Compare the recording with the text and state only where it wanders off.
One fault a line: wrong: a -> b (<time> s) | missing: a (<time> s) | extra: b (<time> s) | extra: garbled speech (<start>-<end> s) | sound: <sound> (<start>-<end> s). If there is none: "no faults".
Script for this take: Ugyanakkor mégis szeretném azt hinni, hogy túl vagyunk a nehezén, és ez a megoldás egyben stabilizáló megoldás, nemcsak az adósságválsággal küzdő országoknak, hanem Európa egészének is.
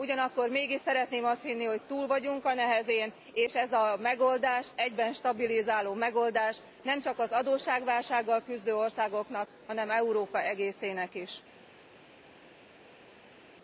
no faults